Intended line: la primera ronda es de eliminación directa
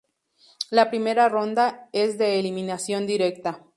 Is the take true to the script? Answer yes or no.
yes